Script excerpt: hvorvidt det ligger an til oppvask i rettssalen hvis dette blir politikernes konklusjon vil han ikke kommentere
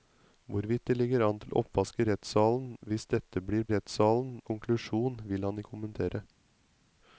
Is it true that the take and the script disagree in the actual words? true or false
true